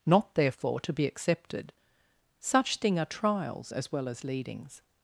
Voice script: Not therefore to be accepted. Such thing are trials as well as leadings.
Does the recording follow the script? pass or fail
pass